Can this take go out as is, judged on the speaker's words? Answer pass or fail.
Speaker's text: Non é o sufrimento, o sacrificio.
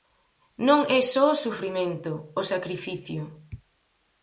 fail